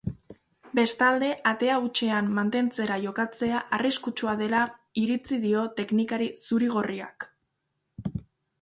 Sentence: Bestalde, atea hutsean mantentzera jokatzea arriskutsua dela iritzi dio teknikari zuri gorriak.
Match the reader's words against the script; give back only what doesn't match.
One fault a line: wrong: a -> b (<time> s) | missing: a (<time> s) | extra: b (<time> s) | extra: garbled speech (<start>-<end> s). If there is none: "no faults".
no faults